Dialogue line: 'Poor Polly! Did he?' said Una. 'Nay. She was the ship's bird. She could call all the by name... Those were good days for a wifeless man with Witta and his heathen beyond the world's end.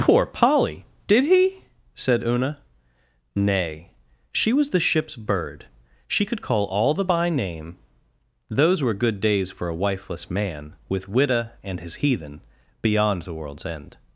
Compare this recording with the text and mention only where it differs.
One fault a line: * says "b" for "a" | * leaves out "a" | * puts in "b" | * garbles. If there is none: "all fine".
all fine